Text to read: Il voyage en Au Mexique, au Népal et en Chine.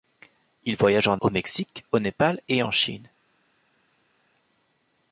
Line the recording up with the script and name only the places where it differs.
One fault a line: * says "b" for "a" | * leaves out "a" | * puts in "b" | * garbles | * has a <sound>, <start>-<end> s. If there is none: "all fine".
all fine